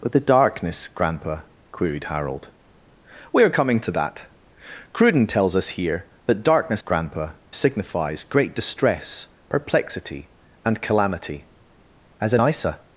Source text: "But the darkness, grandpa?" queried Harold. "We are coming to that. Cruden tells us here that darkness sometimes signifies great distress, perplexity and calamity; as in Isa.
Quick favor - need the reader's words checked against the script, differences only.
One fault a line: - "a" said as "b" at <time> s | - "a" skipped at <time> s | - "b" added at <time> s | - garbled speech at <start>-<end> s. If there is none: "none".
- "sometimes" said as "grandpa" at 6.8 s